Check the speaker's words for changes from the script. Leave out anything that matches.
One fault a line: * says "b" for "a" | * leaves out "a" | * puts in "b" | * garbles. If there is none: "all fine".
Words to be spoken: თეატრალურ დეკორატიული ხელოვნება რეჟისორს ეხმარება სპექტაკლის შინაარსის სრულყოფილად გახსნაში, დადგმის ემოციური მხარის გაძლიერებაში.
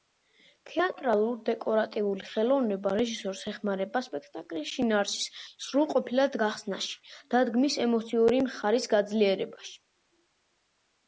all fine